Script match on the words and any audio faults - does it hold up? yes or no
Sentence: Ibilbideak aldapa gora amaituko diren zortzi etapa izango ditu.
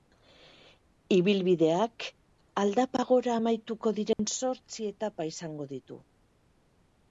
no